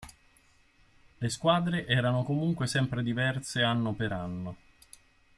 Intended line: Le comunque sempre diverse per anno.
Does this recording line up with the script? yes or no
no